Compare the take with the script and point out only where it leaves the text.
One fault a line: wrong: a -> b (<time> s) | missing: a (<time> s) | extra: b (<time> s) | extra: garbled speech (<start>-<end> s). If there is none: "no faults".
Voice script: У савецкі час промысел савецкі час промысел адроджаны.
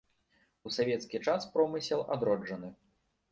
missing: савецкі час промысел (2.1 s)